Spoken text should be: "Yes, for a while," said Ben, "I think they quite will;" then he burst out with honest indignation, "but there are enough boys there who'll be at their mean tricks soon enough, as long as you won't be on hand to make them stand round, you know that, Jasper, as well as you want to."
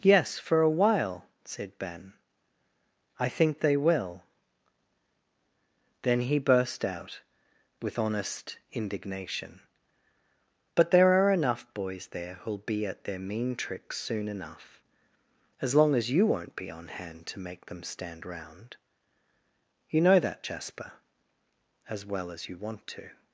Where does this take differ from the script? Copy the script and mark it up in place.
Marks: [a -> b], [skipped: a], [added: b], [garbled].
"Yes, for a while," said Ben, "I think they [skipped: quite] will;" then he burst out with honest indignation, "but there are enough boys there who'll be at their mean tricks soon enough, as long as you won't be on hand to make them stand round, you know that, Jasper, as well as you want to."